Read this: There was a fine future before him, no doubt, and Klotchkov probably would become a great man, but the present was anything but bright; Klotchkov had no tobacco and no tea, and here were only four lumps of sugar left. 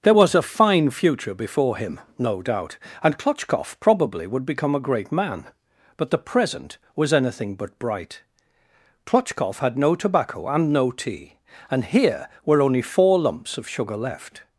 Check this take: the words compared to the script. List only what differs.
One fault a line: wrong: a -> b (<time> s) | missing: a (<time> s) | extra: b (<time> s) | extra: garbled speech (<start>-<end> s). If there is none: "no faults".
no faults